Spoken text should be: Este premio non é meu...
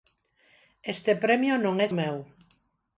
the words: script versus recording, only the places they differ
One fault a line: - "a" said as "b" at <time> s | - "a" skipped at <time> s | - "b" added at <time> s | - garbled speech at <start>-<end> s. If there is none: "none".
none